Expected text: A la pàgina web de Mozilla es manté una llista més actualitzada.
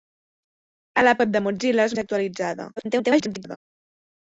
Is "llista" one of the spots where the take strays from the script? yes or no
yes